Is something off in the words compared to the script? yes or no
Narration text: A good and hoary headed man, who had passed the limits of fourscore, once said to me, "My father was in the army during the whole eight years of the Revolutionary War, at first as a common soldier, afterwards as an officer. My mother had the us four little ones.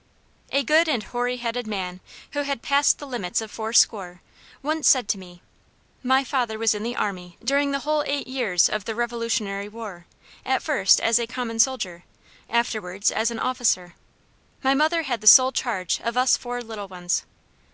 yes